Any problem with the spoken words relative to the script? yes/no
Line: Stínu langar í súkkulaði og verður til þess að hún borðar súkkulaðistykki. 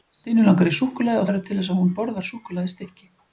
no